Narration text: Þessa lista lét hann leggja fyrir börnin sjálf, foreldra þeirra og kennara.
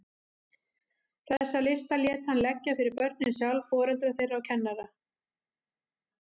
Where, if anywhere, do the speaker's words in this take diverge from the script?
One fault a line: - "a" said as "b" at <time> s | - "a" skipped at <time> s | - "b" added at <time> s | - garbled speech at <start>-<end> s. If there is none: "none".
none